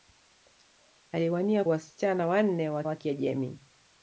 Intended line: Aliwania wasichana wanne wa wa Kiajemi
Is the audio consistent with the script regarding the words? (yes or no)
yes